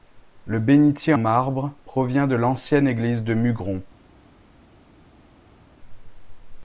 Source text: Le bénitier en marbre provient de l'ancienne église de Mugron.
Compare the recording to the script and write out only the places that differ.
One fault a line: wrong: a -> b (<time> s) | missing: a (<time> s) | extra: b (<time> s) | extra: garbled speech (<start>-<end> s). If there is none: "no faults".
missing: en (1.1 s)